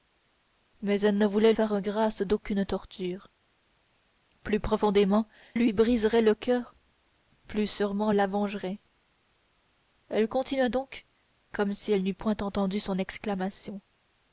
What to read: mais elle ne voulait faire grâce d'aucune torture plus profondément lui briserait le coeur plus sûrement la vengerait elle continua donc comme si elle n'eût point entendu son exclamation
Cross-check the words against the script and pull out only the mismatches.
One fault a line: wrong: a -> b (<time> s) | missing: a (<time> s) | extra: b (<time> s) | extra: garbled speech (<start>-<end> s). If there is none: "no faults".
no faults